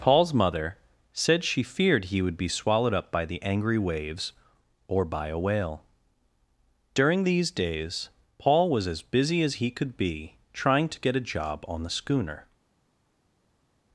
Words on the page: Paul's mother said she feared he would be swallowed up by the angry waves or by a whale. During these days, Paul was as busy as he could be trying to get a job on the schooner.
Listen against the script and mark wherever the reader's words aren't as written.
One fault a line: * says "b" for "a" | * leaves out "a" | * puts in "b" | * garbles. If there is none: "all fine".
all fine